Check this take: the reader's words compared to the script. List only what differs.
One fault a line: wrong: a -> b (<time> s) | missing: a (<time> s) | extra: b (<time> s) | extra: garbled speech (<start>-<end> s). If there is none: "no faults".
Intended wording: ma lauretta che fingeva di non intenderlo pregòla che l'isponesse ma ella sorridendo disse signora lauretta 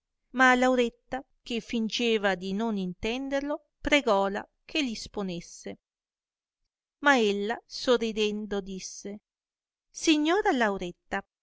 no faults